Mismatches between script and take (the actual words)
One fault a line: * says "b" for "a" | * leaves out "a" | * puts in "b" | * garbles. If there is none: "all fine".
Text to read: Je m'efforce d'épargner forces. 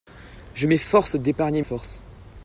all fine